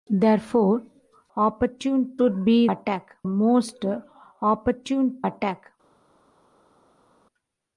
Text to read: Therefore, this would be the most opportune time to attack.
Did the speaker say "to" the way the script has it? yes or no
no